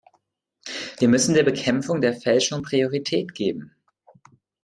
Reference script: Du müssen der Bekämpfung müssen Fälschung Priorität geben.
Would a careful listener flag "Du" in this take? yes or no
yes